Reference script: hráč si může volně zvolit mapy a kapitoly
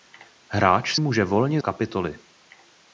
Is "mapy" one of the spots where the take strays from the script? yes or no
yes